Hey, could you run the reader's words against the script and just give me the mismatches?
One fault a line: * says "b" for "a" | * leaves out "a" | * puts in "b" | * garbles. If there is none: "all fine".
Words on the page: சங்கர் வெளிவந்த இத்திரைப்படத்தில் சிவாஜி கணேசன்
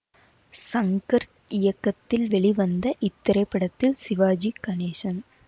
* puts in "இயக்கத்தில்"